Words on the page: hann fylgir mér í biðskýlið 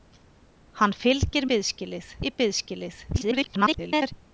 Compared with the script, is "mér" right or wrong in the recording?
wrong